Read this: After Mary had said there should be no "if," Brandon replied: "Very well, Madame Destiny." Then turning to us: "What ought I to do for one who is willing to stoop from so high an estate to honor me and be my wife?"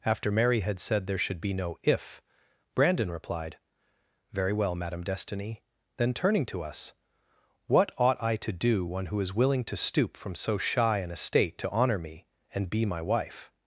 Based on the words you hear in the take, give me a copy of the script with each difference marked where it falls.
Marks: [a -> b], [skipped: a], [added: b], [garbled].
After Mary had said there should be no "if," Brandon replied: "Very well, Madame Destiny." Then turning to us: "What ought I to do [skipped: for] one who is willing to stoop from so [high -> shy] an estate to honor me and be my wife?"